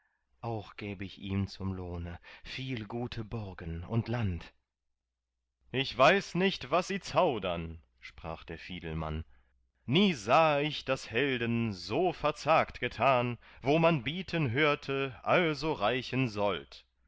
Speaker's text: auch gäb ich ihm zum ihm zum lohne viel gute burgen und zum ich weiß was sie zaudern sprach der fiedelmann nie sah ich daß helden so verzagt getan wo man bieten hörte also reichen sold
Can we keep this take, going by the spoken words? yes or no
no